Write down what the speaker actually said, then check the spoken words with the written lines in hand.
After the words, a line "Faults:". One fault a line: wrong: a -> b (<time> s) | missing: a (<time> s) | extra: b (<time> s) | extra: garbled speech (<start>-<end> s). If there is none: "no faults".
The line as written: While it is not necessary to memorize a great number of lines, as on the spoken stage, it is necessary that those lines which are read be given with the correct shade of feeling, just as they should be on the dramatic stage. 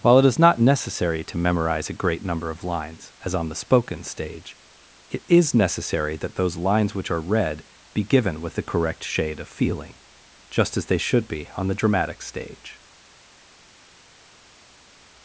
While it is not necessary to memorize a great number of lines, as on the spoken stage, it is necessary that those lines which are read be given with the correct shade of feeling, just as they should be on the dramatic stage.
Faults:
no faults